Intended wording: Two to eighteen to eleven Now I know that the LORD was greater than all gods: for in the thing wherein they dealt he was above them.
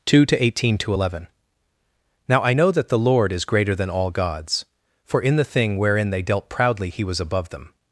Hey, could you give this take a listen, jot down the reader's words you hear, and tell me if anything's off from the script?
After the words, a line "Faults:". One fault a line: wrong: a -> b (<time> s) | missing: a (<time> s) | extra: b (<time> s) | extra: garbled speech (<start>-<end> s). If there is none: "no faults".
Two to eighteen to eleven Now I know that the LORD is greater than all gods: for in the thing wherein they dealt proudly he was above them.
Faults:
wrong: was -> is (3.3 s)
extra: proudly (6.5 s)